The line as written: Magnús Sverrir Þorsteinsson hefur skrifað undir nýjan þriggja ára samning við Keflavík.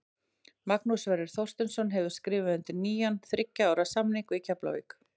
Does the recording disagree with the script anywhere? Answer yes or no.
no